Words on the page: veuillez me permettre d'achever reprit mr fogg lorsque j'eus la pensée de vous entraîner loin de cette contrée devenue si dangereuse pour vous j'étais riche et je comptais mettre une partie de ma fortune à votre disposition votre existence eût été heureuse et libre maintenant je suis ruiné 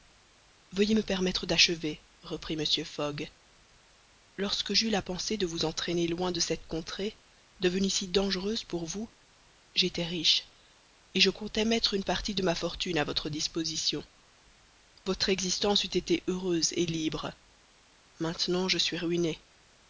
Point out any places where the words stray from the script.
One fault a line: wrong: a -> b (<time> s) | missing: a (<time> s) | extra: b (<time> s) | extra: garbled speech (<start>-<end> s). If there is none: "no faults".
no faults